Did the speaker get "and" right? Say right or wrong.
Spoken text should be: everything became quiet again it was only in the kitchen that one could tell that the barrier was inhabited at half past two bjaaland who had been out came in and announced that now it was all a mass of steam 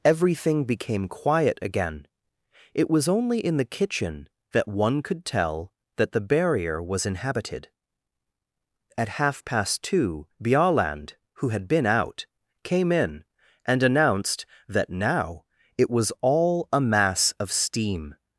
right